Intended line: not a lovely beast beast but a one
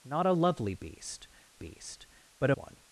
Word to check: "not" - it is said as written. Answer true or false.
true